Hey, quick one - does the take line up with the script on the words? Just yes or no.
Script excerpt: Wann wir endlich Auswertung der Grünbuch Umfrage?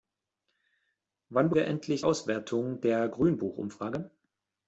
yes